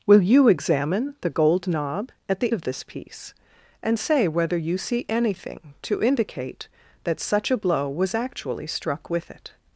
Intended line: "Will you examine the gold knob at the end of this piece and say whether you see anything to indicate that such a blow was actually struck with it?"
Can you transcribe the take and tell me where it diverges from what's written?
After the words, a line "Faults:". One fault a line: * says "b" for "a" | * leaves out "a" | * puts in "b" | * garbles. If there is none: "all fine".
"Will you examine the gold knob at the of this piece and say whether you see anything to indicate that such a blow was actually struck with it?"
Faults:
* leaves out "end"